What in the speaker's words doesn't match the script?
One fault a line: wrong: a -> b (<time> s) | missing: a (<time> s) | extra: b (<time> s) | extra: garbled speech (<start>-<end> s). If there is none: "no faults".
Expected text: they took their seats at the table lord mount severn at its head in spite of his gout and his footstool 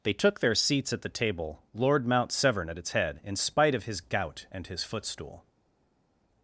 no faults